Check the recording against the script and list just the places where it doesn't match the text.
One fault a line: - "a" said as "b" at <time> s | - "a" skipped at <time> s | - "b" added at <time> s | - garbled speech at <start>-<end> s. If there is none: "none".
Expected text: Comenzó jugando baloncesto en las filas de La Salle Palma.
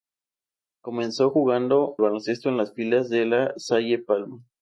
none